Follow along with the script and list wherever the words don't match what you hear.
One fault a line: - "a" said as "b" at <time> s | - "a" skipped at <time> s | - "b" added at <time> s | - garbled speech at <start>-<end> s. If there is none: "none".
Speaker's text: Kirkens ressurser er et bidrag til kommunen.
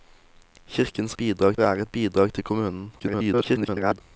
- "ressurser" said as "bidrag" at 1.1 s
- garbled speech at 3.0-4.0 s